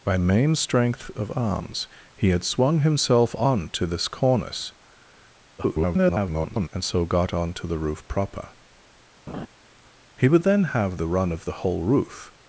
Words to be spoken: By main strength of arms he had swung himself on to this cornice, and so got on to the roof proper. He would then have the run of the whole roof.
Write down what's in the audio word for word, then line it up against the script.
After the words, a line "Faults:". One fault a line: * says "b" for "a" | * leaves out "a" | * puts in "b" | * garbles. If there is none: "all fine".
By main strength of arms he had swung himself on to this cornice, [garbled] and so got on to the roof proper. He would then have the run of the whole roof.
Faults:
* garbles